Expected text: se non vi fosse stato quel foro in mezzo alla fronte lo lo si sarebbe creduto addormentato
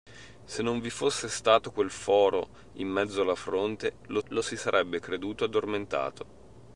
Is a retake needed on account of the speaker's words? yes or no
no